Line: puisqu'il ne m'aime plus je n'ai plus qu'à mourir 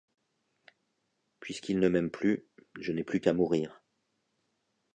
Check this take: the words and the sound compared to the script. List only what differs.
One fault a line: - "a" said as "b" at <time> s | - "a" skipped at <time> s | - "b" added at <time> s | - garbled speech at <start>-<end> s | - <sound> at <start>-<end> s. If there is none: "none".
none